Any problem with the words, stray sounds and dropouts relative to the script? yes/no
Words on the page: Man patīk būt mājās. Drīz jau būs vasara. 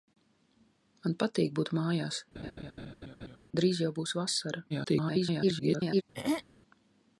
yes